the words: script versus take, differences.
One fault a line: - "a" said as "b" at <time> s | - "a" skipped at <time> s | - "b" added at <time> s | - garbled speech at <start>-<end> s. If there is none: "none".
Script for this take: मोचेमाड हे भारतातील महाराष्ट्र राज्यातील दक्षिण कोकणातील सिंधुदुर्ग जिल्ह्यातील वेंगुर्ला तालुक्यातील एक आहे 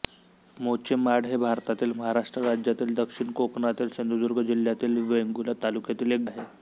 none